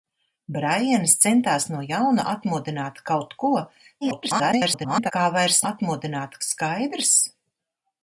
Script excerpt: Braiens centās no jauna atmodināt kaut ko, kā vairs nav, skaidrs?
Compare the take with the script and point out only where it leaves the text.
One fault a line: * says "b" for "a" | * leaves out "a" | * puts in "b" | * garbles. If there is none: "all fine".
* garbles
* says "atmodināt" for "nav"